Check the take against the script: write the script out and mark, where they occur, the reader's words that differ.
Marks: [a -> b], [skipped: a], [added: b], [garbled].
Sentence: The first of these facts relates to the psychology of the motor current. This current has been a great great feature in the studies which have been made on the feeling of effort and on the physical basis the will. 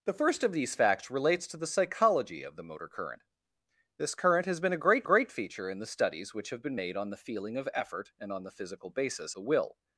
The first of these facts relates to the psychology of the motor current. This current has been a great great feature in the studies which have been made on the feeling of effort and on the physical basis the will.